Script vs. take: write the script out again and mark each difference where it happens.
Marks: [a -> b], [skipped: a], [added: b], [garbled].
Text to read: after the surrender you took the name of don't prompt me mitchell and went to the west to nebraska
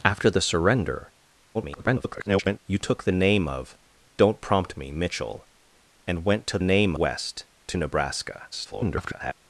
after the surrender [garbled] you took the name of don't prompt me mitchell and went to [the -> name] west to nebraska [garbled]